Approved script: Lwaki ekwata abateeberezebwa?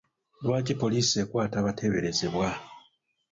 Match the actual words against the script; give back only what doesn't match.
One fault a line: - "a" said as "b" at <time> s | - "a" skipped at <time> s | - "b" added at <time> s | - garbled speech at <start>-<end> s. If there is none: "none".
- "poliisi" added at 0.8 s